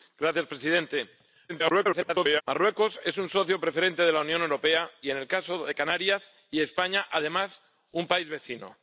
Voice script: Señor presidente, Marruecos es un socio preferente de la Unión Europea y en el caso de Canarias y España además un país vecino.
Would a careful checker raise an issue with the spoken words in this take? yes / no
yes